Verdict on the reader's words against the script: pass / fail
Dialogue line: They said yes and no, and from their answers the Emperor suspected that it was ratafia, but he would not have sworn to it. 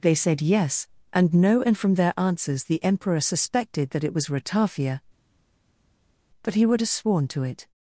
fail